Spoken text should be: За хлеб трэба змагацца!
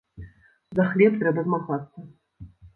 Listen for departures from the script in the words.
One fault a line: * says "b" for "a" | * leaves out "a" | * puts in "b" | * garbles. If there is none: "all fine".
all fine